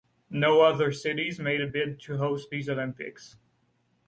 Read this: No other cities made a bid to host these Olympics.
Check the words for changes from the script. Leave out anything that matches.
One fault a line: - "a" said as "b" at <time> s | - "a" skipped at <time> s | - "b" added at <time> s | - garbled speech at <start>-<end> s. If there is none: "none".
none